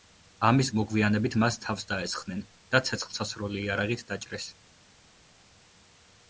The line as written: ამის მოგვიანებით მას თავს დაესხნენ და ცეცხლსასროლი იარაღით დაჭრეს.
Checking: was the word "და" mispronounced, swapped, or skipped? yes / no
no